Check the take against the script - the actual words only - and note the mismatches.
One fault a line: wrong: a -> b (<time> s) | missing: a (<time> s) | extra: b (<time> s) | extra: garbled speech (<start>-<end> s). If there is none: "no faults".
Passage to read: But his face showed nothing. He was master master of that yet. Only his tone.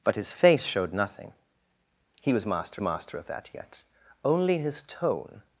no faults